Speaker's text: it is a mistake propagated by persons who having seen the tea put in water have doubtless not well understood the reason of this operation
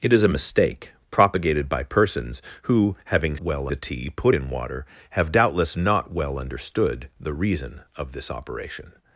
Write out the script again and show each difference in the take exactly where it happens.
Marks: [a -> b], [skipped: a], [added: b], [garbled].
it is a mistake propagated by persons who having [seen -> well] the tea put in water have doubtless not well understood the reason of this operation